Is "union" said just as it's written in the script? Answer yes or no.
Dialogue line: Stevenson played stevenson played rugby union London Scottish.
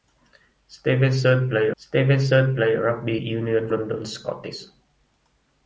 yes